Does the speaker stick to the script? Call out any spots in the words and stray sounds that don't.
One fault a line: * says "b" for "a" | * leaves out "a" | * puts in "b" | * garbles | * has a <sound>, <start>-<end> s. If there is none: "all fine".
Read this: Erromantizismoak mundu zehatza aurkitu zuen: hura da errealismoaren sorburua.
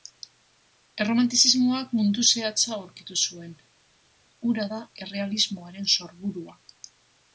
all fine